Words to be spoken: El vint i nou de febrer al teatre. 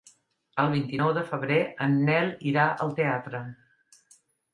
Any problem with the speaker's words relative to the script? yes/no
yes